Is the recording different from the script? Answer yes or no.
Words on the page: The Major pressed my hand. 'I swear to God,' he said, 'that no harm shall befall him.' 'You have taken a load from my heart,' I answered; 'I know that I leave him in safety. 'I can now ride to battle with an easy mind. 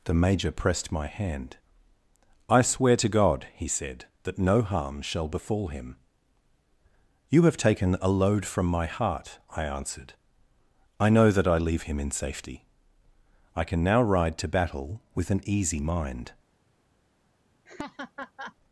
no